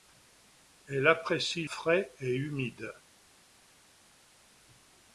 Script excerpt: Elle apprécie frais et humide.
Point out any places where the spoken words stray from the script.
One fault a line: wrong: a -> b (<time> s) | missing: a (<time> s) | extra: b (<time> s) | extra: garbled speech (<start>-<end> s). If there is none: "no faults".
no faults